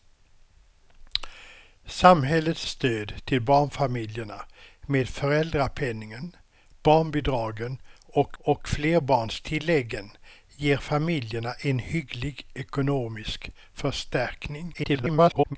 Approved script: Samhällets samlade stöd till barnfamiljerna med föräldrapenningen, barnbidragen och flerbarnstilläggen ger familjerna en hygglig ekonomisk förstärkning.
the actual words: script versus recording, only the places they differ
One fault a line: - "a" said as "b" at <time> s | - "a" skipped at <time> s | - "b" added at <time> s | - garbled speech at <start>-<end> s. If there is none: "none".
- "samlade" skipped at 2.6 s
- "och" added at 8.4 s
- garbled speech at 14.7-15.6 s